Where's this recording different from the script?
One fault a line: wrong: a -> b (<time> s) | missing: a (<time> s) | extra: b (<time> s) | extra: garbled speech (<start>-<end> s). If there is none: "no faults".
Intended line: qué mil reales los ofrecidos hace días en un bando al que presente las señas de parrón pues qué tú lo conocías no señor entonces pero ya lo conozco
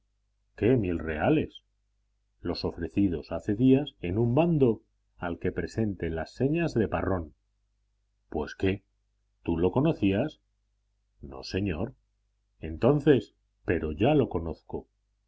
no faults